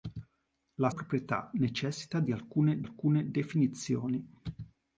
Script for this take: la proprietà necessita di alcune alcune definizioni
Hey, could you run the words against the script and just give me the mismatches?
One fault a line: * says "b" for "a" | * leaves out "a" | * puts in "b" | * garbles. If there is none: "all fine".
all fine